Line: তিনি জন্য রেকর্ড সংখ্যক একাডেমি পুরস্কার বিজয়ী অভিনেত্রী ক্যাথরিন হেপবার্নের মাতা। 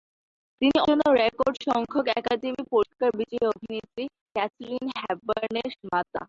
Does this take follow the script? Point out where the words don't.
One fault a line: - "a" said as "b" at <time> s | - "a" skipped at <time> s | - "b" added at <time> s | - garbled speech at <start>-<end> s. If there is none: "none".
none